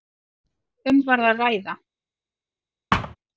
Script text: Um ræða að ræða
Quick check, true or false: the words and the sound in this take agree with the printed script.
false